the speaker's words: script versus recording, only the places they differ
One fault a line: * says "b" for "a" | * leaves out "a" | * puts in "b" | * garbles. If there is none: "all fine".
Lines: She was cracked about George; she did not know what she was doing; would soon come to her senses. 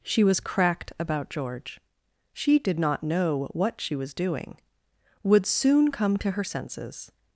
all fine